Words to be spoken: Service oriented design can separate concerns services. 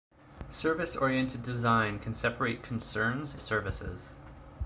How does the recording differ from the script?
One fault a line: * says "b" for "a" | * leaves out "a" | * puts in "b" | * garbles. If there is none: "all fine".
all fine